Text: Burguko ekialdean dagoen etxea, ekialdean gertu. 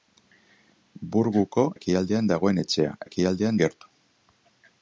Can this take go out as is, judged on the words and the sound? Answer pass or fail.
pass